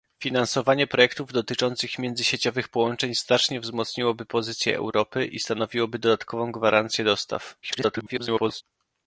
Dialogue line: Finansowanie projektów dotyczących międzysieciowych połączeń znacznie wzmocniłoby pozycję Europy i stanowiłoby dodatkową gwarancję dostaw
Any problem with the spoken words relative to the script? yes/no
yes